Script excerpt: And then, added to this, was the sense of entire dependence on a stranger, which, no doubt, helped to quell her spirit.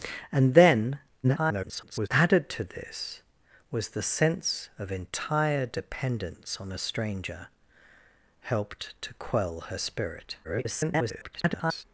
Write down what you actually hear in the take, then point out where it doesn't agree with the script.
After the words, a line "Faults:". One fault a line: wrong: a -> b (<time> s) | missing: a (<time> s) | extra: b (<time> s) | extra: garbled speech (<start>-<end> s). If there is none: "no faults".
And then, [garbled] added to this, was the sense of entire dependence on a stranger, helped to quell her spirit. [garbled]
Faults:
extra: garbled speech (1.2-2.1 s)
missing: which no doubt (7.5 s)
extra: garbled speech (10.4-11.8 s)